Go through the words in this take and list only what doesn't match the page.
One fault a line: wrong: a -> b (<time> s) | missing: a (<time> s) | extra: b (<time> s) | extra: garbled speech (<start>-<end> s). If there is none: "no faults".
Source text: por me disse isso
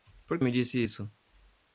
no faults